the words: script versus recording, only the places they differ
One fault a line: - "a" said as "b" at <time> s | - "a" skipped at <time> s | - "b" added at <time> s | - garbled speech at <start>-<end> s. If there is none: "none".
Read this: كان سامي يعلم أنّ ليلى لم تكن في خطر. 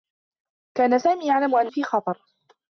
- "ليلى لم تكن" skipped at 1.7 s